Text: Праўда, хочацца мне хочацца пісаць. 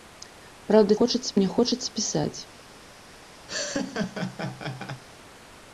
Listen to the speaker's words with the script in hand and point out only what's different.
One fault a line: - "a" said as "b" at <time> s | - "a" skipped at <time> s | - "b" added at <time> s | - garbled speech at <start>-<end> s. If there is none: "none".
none